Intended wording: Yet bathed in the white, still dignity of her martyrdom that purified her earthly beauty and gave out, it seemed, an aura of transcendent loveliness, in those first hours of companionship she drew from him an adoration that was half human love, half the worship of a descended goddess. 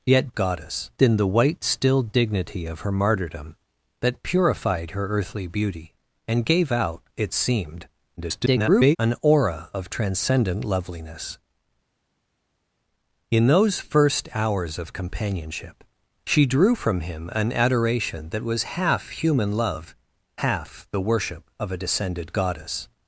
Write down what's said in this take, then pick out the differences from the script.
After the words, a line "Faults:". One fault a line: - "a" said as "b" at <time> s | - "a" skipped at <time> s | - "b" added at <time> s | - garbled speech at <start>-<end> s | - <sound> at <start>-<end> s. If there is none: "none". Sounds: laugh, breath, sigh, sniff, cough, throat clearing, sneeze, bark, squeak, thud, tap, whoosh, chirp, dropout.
Yet goddess in the white, still dignity of her martyrdom that purified her earthly beauty and gave out, it seemed, [garbled] an aura of transcendent loveliness, in those first hours of companionship she drew from him an adoration that was half human love, half the worship of a descended goddess.
Faults:
- "bathed" said as "goddess" at 0.3 s
- garbled speech at 8.2-9.0 s